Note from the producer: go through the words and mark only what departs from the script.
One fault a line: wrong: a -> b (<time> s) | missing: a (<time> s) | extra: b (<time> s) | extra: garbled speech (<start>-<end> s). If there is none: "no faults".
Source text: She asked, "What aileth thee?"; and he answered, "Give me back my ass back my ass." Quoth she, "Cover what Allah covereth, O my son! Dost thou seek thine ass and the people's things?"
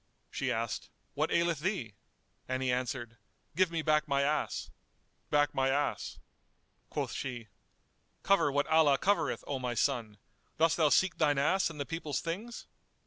no faults